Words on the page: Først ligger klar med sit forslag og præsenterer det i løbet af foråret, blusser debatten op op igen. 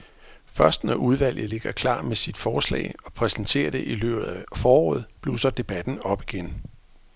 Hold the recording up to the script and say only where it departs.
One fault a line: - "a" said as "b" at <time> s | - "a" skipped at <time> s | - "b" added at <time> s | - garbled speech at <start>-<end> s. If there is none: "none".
- "når udvalget" added at 0.8 s
- "op" skipped at 6.2 s